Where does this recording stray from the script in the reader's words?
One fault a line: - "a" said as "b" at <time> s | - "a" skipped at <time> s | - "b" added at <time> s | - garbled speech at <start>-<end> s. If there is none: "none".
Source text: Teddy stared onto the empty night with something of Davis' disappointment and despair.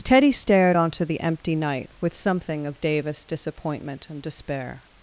none